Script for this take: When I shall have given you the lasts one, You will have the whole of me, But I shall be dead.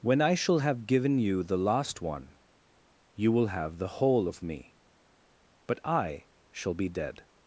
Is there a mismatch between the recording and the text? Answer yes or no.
yes